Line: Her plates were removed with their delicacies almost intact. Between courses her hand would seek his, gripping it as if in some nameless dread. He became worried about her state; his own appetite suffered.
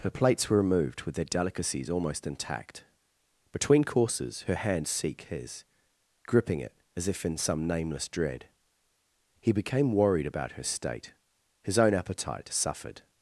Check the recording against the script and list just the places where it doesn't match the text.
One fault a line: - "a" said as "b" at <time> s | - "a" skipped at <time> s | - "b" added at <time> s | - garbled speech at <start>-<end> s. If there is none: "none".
- "would" skipped at 4.9 s